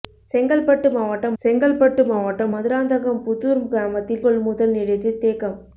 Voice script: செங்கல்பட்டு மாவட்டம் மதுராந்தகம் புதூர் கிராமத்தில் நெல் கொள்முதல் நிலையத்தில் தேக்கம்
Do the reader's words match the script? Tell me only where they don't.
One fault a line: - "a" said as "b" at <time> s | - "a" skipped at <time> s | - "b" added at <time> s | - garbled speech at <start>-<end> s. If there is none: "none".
- "செங்கல்பட்டு மாவட்டம்" added at 1.4 s
- "நெல்" skipped at 4.2 s